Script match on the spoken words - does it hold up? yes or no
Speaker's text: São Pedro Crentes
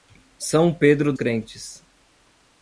yes